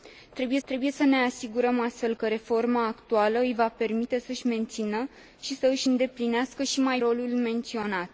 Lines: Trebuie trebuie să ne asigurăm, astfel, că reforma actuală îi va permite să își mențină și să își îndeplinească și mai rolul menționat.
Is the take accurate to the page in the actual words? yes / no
yes